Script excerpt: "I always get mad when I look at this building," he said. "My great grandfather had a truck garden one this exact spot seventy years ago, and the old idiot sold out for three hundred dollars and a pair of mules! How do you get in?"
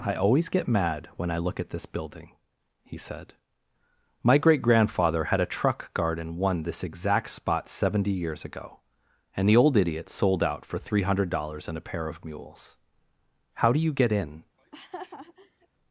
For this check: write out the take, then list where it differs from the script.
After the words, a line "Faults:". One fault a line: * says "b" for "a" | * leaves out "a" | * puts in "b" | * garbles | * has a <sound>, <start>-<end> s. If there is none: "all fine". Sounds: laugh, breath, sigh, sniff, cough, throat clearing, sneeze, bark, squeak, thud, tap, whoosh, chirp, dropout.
"I always get mad when I look at this building," he said. "My great grandfather had a truck garden one this exact spot seventy years ago, and the old idiot sold out for three hundred dollars and a pair of mules! How do you get in?"
Faults:
* has a laugh, 14.6-15.7 s